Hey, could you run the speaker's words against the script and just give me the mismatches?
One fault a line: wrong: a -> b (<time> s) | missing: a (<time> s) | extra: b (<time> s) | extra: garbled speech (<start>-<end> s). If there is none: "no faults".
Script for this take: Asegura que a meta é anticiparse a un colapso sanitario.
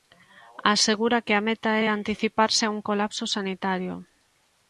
no faults